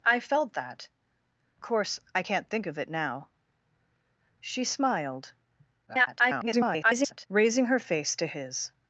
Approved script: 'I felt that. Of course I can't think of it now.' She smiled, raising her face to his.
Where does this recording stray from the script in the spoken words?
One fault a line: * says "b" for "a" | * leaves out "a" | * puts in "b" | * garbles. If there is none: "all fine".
* leaves out "Of"
* garbles